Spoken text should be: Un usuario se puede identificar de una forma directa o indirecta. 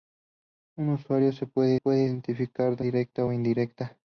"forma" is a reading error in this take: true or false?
true